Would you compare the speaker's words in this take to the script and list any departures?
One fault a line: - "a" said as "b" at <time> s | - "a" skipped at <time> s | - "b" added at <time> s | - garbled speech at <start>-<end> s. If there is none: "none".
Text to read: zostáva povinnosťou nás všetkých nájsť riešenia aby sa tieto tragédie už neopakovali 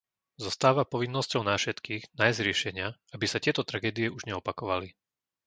none